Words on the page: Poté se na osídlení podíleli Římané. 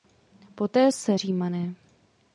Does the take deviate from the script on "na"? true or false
true